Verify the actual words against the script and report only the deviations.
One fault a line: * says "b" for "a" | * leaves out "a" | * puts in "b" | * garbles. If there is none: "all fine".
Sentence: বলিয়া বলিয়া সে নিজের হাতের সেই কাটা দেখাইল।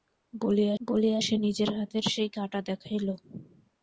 all fine